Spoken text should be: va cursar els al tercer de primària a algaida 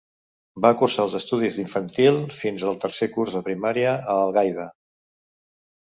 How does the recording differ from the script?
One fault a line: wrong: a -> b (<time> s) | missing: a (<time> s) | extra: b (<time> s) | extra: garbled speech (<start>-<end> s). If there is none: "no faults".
extra: estudis d'infantil fins (1.2 s)
extra: curs (3.2 s)